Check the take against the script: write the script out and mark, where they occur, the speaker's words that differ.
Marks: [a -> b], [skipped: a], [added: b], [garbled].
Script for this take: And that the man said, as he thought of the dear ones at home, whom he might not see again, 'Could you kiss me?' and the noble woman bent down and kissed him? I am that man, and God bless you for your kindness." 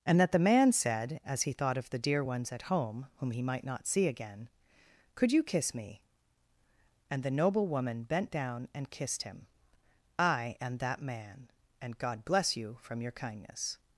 And that the man said, as he thought of the dear ones at home, whom he might not see again, 'Could you kiss me?' and the noble woman bent down and kissed him? I am that man, and God bless you [for -> from] your kindness."